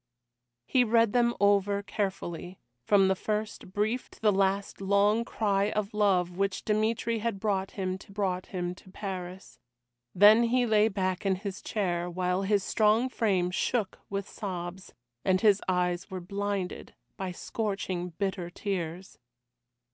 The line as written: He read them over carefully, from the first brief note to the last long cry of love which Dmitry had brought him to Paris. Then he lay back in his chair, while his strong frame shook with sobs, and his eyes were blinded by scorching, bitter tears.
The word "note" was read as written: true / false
false